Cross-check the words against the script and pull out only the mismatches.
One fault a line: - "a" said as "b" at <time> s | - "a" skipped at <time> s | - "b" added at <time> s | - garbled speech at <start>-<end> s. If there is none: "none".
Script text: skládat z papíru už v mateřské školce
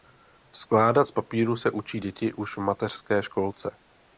- "se učí děti" added at 1.5 s